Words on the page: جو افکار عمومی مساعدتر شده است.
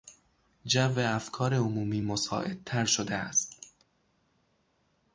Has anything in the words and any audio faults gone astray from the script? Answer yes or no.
no